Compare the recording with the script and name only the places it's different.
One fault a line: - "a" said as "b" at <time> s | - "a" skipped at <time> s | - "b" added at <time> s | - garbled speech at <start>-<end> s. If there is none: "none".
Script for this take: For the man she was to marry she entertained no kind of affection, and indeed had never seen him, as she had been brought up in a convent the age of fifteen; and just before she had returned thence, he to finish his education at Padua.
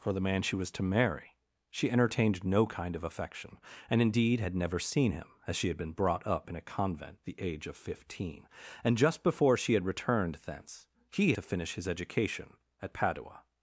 none